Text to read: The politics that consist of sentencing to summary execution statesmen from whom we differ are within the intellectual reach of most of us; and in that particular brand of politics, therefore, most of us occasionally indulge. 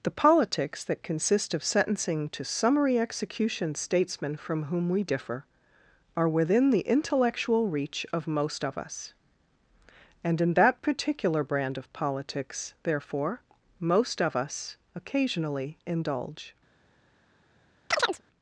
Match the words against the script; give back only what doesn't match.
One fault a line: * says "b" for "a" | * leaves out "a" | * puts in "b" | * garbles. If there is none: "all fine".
all fine